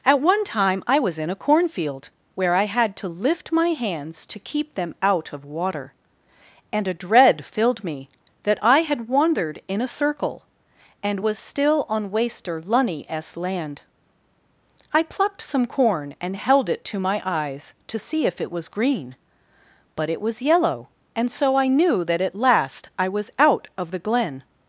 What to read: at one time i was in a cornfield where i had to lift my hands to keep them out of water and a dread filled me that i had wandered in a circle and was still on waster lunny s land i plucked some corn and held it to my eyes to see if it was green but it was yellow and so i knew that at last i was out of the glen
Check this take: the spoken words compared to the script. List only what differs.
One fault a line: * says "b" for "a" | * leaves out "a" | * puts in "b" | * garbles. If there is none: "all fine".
all fine